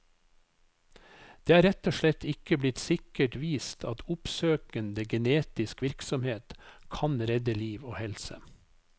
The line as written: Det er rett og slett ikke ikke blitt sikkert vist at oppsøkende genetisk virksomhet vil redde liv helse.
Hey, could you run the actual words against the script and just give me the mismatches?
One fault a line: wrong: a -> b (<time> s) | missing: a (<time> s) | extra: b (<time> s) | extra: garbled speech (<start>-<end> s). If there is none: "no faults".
missing: ikke (2.6 s)
wrong: vil -> kan (7.0 s)
extra: og (7.8 s)